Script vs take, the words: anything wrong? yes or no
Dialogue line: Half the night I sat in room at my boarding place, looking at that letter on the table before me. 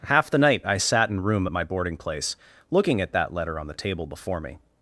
no